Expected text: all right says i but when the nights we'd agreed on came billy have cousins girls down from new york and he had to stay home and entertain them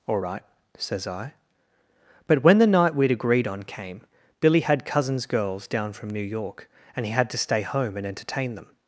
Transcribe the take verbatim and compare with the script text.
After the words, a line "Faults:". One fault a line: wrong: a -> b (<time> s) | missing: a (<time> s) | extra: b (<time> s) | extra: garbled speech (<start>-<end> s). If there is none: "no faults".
all right says i but when the night we'd agreed on came billy had cousins girls down from new york and he had to stay home and entertain them
Faults:
wrong: nights -> night (2.7 s)
wrong: have -> had (4.6 s)